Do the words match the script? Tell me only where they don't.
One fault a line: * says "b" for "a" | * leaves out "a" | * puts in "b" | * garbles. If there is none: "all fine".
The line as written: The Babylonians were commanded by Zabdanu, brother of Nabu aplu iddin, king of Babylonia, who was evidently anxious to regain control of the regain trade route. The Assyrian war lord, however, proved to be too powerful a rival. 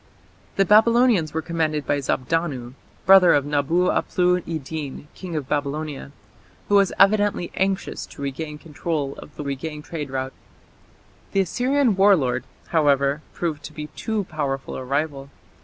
all fine